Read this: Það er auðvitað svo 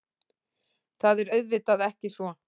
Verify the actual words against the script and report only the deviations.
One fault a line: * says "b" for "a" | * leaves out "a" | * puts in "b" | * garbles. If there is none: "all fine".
* puts in "ekki"